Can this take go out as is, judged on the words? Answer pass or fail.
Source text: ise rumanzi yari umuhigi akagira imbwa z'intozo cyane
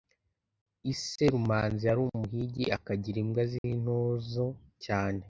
pass